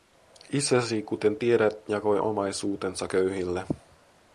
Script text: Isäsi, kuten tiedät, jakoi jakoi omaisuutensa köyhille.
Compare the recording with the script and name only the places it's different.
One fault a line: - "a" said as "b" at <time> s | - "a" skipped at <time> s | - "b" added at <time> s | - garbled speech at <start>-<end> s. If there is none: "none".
- "jakoi" skipped at 2.2 s